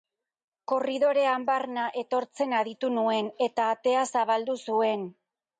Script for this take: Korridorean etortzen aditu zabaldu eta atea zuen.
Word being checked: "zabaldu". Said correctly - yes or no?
no